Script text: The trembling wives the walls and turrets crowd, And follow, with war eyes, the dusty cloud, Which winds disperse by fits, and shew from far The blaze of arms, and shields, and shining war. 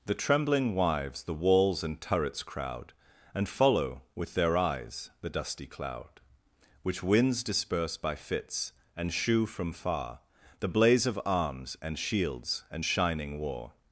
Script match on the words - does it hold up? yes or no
no